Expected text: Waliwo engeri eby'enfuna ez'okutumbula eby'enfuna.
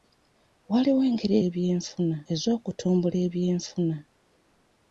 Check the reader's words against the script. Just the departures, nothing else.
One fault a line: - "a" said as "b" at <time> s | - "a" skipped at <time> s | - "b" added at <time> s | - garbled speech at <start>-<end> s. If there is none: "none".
none